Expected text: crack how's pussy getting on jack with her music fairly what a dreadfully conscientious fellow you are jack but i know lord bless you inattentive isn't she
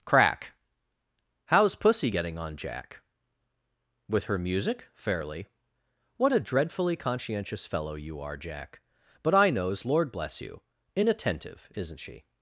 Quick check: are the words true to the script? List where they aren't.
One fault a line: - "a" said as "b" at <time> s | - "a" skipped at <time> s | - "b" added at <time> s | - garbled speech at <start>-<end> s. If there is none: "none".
- "know" said as "knows" at 9.5 s